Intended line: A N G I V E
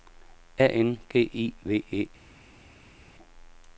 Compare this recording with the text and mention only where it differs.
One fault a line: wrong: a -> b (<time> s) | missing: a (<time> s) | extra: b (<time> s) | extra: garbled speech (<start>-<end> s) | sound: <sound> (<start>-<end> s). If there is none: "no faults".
no faults